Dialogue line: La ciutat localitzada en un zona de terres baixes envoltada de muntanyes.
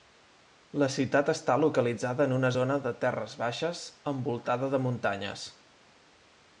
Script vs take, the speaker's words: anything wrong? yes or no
yes